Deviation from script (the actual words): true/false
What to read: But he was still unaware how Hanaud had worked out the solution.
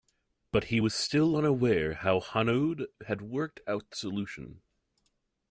false